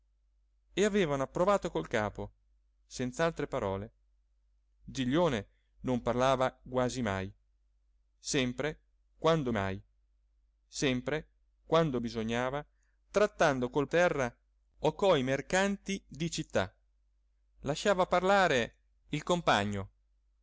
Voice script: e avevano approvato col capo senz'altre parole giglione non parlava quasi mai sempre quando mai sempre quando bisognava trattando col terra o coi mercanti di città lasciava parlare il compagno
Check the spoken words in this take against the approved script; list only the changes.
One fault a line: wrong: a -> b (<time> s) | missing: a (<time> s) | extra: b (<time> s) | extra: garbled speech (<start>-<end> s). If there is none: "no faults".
no faults